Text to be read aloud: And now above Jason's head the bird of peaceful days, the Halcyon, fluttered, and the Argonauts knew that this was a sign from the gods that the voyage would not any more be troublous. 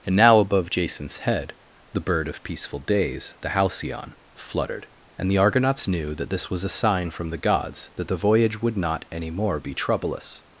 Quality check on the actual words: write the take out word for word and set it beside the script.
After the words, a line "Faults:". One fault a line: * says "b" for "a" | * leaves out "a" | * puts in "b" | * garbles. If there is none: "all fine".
And now above Jason's head the bird of peaceful days, the Halcyon, fluttered, and the Argonauts knew that this was a sign from the gods that the voyage would not any more be troublous.
Faults:
all fine